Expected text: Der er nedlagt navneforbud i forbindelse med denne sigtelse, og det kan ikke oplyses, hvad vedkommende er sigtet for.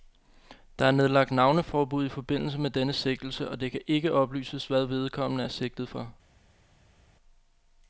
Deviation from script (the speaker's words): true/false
false